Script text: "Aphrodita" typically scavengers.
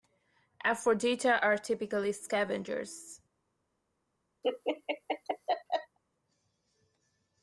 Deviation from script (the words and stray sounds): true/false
true